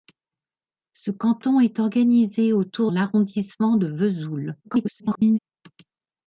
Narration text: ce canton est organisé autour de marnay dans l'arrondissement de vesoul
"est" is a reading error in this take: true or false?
false